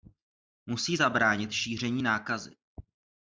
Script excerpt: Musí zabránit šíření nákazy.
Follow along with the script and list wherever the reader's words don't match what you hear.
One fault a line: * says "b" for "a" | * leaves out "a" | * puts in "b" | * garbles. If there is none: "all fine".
all fine